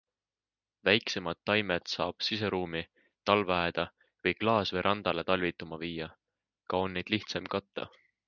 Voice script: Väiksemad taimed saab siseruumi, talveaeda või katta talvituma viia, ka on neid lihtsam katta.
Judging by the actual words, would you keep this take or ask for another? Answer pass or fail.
fail